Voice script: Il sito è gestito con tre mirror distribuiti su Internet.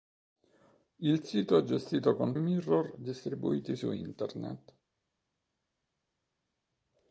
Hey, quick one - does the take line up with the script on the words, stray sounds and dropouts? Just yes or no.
no